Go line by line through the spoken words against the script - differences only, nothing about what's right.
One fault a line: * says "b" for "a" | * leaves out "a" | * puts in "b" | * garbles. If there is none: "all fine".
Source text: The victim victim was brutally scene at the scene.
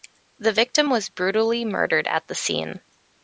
* leaves out "victim"
* says "murdered" for "scene"